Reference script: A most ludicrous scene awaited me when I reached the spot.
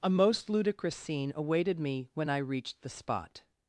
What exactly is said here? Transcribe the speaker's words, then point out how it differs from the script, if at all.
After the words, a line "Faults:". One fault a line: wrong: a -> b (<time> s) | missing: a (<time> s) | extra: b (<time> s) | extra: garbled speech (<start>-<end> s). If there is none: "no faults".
A most ludicrous scene awaited me when I reached the spot.
Faults:
no faults